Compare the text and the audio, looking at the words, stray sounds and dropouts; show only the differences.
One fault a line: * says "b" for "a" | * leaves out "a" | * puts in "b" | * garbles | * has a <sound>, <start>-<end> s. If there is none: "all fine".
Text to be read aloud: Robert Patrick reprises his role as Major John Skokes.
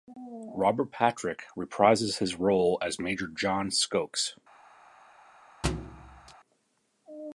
* has a thud, 5.6-6.3 s